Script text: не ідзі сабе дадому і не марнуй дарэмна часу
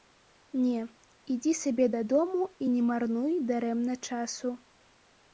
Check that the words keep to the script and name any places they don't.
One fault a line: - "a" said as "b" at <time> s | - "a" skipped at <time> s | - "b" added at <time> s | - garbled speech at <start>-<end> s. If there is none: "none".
none